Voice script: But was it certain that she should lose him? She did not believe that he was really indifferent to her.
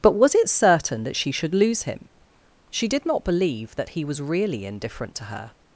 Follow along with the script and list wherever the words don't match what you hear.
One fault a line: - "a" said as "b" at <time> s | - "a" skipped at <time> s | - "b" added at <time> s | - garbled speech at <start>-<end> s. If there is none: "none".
none